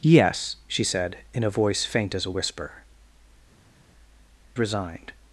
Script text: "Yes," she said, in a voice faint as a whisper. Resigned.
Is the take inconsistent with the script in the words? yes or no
no